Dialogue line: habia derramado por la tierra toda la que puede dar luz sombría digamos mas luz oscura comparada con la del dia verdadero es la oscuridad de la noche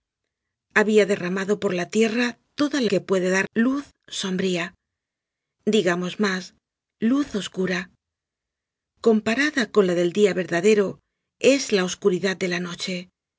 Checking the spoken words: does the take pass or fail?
pass